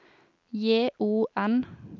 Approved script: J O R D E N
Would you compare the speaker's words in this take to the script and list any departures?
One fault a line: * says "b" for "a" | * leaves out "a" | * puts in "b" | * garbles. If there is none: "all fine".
* leaves out "R D E"